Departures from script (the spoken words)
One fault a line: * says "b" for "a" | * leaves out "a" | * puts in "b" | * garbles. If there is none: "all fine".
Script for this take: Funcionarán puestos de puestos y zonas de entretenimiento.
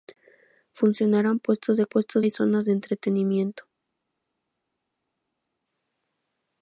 all fine